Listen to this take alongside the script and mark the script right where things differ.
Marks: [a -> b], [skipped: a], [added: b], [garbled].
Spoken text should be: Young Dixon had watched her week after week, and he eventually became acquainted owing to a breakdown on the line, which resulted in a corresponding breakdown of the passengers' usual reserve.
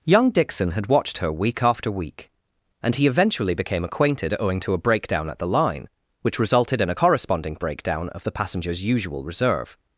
Young Dixon had watched her week after week, and he eventually became acquainted owing to a breakdown [on -> at] the line, which resulted in a corresponding breakdown of the passengers' usual reserve.